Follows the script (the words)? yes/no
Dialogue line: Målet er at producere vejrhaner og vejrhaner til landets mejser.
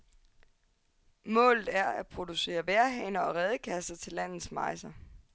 no